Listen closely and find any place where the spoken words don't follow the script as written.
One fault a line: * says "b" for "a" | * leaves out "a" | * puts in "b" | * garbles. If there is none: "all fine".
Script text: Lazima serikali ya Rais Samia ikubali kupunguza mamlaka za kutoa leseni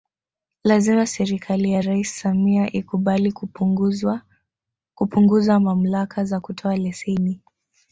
all fine